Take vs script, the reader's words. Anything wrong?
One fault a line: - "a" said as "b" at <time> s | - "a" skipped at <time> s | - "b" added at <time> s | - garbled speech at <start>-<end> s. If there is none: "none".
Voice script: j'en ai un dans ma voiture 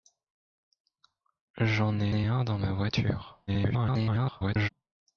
- "ai" added at 2.1 s
- garbled speech at 3.5-4.7 s